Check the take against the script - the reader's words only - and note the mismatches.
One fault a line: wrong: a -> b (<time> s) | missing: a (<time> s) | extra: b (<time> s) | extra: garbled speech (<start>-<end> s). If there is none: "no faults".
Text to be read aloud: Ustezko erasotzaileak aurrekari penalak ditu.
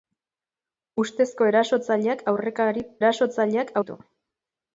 wrong: penalak -> erasotzaileak (3.0 s)